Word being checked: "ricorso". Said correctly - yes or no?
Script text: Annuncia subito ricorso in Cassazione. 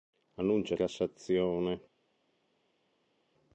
no